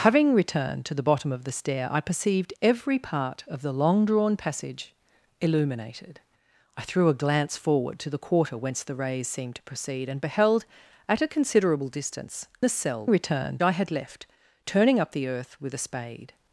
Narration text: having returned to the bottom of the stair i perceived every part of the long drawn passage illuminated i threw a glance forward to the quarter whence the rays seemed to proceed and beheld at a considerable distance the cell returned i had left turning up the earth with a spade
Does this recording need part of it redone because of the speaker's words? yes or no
no